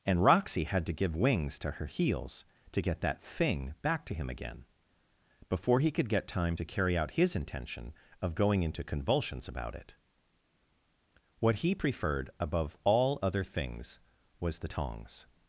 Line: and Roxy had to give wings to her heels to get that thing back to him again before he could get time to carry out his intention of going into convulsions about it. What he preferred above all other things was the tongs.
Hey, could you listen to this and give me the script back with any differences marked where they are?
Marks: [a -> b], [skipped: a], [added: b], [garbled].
and Roxy had to give wings to her heels to get that thing back to him again before he could get time to carry out his intention of going into convulsions about it. What he preferred above all other things was the tongs.